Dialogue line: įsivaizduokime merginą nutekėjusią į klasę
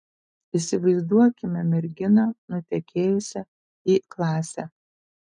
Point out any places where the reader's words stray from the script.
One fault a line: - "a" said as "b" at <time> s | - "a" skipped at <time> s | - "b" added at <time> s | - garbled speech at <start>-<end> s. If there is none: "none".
none